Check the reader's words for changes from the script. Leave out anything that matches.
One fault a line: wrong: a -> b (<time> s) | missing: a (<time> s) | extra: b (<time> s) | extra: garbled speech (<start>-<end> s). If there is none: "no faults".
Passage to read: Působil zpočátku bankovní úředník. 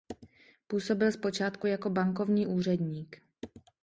extra: jako (1.6 s)